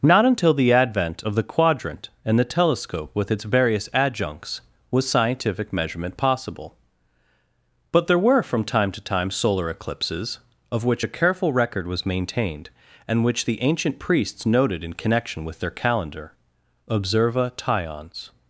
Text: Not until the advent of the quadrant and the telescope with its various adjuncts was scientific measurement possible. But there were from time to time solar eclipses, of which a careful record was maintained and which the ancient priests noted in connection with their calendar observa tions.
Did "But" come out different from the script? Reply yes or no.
no